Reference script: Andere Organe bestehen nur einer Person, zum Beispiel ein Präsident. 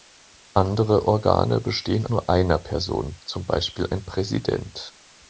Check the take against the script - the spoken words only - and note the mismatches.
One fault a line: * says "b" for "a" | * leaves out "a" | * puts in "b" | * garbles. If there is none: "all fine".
all fine